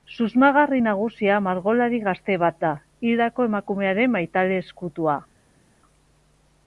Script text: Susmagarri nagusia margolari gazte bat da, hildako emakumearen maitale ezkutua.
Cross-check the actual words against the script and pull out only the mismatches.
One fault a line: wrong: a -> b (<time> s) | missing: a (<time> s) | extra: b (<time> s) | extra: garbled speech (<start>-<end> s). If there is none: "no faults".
no faults